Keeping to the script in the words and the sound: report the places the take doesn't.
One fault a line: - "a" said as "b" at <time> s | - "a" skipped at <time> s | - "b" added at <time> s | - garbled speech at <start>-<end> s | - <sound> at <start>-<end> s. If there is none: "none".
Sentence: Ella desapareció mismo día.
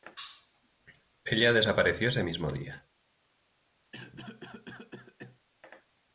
- "ese" added at 2.1 s
- cough at 3.9-5.4 s